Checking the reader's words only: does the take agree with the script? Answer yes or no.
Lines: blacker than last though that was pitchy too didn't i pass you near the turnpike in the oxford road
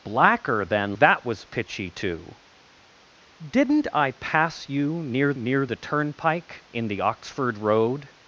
no